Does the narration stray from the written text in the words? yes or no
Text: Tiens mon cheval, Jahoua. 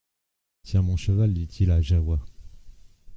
yes